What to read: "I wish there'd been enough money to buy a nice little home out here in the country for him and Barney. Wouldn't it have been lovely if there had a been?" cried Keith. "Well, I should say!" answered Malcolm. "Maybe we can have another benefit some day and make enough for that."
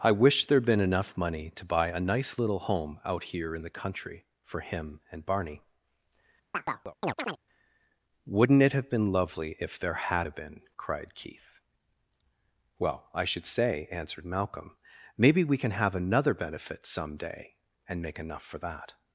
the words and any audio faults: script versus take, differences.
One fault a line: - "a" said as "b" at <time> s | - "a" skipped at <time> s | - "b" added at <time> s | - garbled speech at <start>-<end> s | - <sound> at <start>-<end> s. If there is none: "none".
- chirp at 6.5-7.4 s